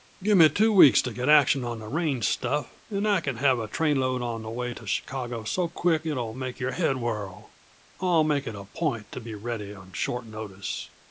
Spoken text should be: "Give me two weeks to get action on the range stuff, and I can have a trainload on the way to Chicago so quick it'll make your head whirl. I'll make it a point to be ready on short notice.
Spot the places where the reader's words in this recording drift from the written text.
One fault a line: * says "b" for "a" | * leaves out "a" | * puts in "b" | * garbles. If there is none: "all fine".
all fine